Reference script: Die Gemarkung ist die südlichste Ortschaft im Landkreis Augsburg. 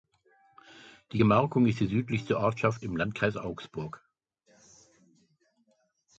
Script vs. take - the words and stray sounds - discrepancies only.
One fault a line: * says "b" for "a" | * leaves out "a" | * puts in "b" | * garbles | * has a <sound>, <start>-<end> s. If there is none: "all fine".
all fine